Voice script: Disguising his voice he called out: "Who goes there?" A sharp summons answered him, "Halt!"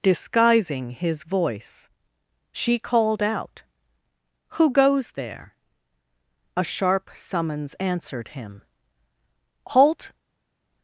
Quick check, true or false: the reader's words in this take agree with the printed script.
false